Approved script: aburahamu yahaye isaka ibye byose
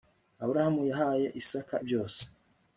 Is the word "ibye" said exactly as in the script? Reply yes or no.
no